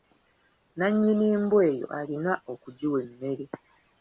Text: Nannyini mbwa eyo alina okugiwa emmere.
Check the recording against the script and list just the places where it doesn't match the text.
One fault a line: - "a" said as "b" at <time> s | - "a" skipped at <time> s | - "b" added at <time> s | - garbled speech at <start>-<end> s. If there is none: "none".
none